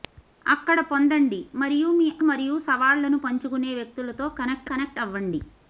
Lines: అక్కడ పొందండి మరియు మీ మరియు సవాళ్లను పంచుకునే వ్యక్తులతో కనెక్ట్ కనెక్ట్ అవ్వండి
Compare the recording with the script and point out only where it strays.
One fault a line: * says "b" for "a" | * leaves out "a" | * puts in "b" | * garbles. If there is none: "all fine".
all fine